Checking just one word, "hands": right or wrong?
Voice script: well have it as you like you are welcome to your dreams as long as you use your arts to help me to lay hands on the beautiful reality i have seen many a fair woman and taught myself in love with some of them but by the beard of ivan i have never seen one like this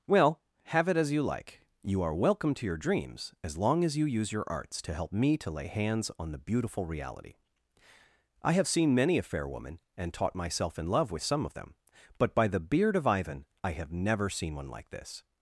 right